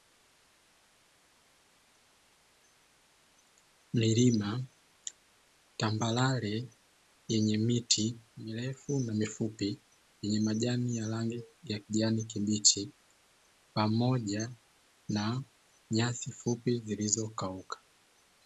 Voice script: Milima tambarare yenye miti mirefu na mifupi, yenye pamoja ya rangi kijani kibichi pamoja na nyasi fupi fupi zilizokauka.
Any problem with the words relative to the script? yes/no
yes